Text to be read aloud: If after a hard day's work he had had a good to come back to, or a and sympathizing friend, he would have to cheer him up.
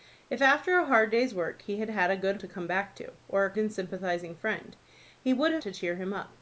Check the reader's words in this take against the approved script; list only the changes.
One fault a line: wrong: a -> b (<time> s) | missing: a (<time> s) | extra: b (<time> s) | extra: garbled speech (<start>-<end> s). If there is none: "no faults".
no faults